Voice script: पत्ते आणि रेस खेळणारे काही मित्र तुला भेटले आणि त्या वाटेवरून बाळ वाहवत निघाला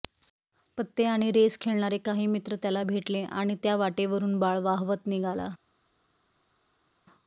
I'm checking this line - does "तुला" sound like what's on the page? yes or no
no